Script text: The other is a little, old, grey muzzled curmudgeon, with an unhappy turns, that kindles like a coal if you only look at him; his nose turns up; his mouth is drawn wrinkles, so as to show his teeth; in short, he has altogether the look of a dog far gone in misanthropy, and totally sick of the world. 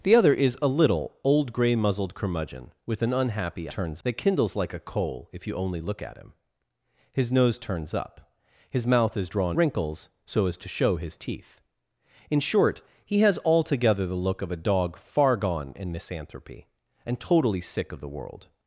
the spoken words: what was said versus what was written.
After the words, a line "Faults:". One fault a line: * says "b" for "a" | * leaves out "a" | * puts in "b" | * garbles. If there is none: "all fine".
The other is a little, old, grey muzzled curmudgeon, with an unhappy turns, that kindles like a coal if you only look at him; his nose turns up; his mouth is drawn wrinkles, so as to show his teeth; in short, he has altogether the look of a dog far gone in misanthropy, and totally sick of the world.
Faults:
all fine